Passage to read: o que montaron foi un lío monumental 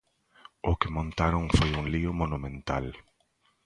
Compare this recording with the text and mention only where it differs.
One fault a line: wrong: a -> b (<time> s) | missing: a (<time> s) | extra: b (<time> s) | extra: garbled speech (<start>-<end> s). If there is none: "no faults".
no faults